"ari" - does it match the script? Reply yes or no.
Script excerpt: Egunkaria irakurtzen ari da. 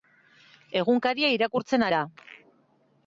no